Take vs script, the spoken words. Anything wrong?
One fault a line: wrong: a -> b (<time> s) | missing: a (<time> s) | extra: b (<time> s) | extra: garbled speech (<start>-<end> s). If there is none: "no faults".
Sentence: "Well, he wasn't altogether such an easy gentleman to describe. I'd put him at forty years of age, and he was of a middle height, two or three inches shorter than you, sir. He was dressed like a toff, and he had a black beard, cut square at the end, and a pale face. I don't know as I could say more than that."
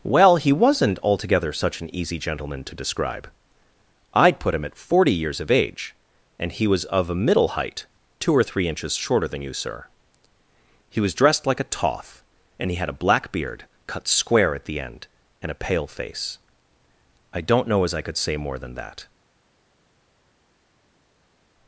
no faults